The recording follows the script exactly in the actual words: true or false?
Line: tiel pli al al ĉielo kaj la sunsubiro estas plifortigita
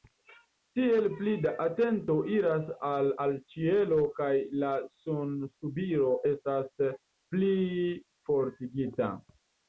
false